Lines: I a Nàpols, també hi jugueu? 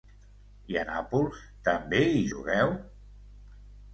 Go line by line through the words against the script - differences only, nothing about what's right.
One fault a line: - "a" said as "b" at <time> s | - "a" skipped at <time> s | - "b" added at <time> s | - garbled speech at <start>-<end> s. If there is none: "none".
none